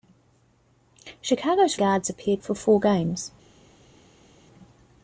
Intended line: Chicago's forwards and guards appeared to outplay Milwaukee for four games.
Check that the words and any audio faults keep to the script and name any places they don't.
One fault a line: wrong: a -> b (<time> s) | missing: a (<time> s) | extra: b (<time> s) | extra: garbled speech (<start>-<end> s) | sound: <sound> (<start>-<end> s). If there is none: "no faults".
missing: forwards and (1.8 s)
missing: to outplay Milwaukee (2.4 s)